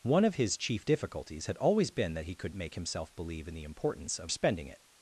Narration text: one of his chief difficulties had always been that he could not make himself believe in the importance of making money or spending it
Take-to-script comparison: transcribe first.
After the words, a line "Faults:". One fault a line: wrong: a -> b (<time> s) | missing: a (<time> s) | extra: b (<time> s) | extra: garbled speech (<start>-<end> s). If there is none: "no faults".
one of his chief difficulties had always been that he could make himself believe in the importance of spending it
Faults:
missing: not (2.5 s)
missing: making money or (4.3 s)